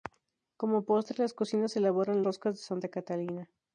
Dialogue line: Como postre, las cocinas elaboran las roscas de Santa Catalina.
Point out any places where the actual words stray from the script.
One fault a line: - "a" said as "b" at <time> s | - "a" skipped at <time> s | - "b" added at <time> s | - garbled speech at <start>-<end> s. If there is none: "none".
- "las" skipped at 2.2 s